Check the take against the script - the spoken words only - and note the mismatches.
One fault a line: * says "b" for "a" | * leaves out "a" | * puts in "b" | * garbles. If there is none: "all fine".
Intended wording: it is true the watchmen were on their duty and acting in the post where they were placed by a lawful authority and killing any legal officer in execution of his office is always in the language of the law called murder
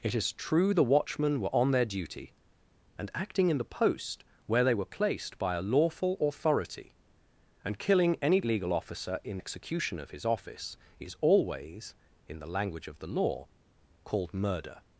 all fine